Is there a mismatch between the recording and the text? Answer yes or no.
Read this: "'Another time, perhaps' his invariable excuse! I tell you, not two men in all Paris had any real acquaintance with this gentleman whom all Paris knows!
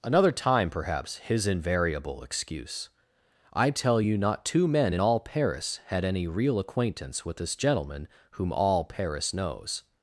no